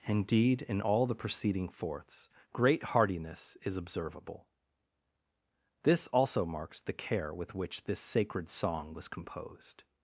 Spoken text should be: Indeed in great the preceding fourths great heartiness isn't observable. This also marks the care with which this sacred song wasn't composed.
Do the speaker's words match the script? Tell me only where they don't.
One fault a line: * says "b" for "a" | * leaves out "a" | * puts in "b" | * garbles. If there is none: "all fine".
* says "all" for "great"
* says "is" for "isn't"
* says "was" for "wasn't"